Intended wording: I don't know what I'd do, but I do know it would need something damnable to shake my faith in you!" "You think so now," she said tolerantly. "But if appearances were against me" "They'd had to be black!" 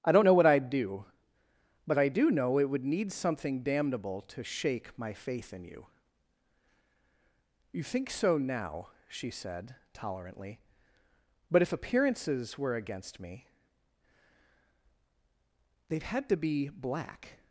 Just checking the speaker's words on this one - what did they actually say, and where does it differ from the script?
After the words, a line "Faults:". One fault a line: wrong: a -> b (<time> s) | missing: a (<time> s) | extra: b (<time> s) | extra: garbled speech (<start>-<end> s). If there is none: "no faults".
I don't know what I'd do, but I do know it would need something damnable to shake my faith in you!" "You think so now," she said tolerantly. "But if appearances were against me" "They'd had to be black!"
Faults:
no faults